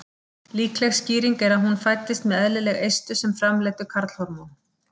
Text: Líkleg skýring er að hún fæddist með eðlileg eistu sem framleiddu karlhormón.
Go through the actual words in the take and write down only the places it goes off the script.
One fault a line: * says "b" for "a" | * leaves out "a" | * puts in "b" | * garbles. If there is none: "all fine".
all fine